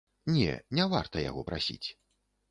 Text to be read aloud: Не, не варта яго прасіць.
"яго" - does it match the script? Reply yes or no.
yes